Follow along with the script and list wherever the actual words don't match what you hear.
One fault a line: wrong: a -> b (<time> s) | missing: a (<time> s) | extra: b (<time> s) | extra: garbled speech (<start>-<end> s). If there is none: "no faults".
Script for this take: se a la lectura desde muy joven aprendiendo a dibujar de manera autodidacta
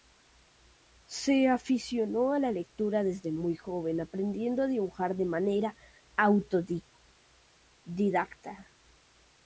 extra: aficionó (1.5 s)